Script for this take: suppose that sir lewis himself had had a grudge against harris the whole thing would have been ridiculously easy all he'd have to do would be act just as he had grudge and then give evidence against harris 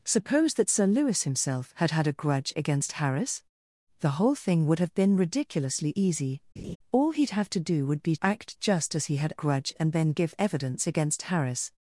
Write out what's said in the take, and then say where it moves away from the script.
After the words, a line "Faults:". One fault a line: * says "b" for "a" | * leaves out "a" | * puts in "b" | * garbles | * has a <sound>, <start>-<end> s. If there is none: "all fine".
suppose that sir lewis himself had had a grudge against harris the whole thing would have been ridiculously easy all he'd have to do would be act just as he had grudge and then give evidence against harris
Faults:
* has a laugh, 6.6-6.8 s